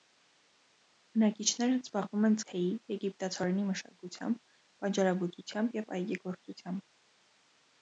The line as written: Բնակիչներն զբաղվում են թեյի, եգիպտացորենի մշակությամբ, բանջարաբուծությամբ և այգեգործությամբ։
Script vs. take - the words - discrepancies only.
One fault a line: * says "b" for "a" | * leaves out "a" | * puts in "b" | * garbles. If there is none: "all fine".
all fine